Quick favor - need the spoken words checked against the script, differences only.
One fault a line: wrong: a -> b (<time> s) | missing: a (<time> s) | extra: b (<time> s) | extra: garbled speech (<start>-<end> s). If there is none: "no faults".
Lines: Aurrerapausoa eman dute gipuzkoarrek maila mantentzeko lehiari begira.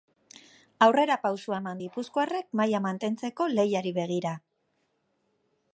missing: dute (1.8 s)